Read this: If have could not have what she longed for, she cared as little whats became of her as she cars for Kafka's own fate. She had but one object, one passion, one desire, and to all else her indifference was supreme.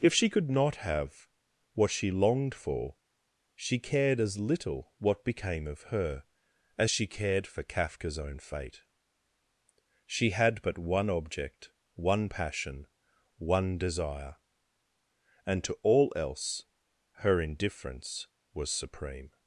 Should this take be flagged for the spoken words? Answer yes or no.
yes